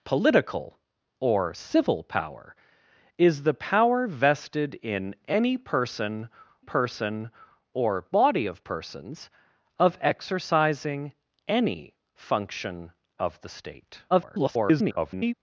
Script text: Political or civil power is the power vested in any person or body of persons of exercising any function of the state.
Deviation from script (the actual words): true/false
true